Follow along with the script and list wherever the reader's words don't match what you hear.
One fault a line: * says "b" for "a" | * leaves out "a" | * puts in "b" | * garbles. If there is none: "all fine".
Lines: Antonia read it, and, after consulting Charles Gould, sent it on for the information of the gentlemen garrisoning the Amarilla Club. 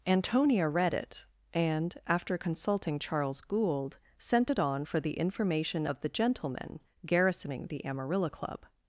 all fine